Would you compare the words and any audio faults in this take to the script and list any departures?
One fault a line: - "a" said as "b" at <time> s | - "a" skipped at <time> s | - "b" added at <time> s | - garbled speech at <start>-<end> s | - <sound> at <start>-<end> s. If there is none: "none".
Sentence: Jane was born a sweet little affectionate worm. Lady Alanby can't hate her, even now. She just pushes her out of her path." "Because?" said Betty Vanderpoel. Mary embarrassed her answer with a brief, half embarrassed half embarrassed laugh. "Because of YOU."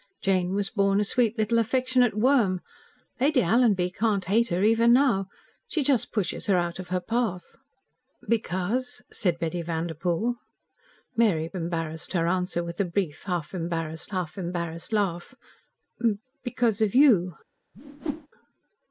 - whoosh at 17.7-18.3 s